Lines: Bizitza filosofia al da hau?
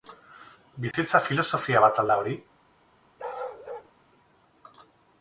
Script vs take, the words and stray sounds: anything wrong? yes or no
yes